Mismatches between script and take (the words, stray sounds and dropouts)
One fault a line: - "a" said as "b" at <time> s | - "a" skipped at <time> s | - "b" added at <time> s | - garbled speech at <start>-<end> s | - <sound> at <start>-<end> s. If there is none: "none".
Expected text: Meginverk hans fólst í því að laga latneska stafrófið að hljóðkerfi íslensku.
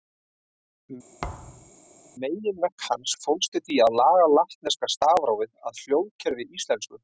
- thud at 1.2-1.7 s